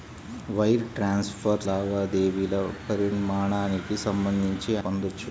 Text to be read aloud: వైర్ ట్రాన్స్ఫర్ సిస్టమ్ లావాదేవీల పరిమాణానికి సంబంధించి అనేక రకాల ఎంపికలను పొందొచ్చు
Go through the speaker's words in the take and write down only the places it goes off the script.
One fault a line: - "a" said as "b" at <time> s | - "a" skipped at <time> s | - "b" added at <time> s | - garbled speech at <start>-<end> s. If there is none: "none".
- "సిస్టమ్" skipped at 1.6 s
- "అనేక రకాల ఎంపికలను" skipped at 4.7 s